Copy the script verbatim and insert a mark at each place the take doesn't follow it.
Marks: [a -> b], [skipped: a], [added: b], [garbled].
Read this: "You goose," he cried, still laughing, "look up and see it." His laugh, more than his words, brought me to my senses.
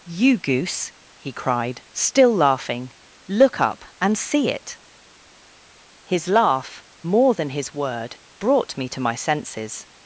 "You goose," he cried, still laughing, "look up and see it." His laugh, more than his [words, -> word] brought me to my senses.